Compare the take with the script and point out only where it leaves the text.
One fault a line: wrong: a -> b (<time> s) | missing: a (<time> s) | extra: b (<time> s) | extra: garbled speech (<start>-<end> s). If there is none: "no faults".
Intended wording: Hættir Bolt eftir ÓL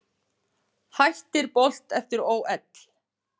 no faults